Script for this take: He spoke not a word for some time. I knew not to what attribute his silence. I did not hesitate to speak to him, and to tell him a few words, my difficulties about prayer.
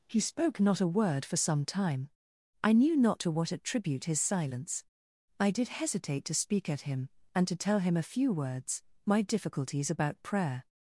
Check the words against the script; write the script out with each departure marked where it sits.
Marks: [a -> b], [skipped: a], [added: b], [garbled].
He spoke not a word for some time. I knew not to what attribute his silence. I did [skipped: not] hesitate to speak [to -> at] him, and to tell him a few words, my difficulties about prayer.